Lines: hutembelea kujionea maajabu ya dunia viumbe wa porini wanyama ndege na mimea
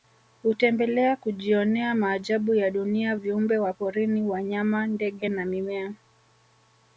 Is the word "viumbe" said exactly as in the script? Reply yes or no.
yes